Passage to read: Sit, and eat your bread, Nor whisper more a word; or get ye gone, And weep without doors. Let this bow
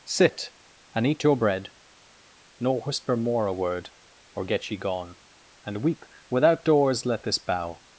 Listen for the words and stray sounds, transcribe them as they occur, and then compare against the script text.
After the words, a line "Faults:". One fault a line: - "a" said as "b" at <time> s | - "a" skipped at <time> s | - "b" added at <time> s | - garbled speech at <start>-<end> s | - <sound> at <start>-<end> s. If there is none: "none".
Sit, and eat your bread, Nor whisper more a word; or get ye gone, And weep without doors. Let this bow
Faults:
none